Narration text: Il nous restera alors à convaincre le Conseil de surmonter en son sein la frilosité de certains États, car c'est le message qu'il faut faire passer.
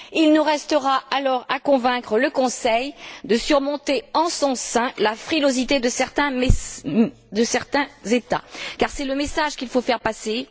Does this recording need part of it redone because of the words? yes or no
no